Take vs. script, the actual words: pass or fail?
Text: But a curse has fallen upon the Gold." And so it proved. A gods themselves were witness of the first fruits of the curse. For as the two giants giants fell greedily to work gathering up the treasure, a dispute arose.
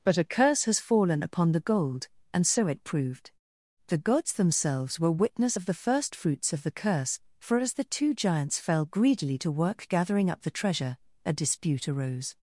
fail